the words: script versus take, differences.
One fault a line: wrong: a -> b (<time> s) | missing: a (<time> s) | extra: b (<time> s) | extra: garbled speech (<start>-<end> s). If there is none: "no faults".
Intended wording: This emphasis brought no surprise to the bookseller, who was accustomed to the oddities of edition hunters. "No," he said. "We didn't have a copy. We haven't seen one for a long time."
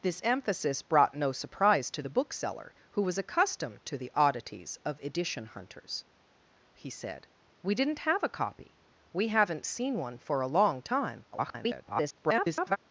missing: No (6.0 s)
extra: garbled speech (11.3-12.8 s)